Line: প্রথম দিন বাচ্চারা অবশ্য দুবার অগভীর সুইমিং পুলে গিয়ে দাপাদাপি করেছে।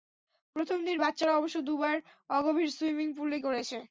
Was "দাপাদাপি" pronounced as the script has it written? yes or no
no